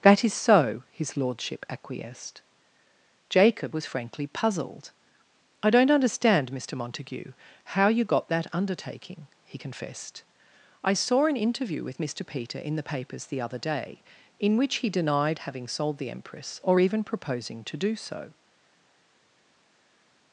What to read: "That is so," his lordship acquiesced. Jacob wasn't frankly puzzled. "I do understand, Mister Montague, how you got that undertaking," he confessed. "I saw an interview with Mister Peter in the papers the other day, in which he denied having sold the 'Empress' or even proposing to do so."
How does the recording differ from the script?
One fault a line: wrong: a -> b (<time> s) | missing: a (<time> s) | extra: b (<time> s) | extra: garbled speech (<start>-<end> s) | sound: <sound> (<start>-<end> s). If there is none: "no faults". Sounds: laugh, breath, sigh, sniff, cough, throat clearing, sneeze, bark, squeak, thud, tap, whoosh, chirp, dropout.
wrong: wasn't -> was (3.7 s)
wrong: do -> don't (5.7 s)